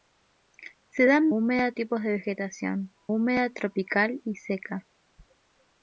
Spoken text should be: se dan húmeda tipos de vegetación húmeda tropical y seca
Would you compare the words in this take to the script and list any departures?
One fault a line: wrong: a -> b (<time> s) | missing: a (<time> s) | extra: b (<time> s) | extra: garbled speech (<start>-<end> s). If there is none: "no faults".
no faults